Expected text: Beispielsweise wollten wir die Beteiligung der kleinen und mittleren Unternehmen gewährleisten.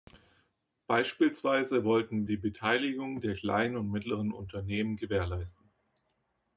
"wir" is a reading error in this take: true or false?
true